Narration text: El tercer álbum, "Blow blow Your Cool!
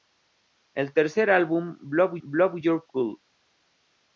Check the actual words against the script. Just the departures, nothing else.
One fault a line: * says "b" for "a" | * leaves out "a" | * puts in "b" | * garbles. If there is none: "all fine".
all fine